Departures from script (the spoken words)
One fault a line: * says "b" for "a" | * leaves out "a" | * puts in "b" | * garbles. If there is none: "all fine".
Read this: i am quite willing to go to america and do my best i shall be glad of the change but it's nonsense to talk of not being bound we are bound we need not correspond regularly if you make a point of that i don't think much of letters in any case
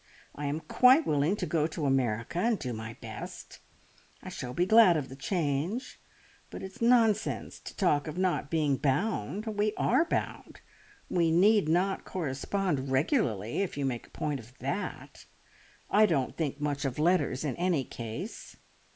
all fine